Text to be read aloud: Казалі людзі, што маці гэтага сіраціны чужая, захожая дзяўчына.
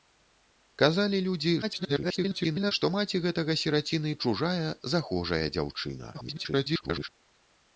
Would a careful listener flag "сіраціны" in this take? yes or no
no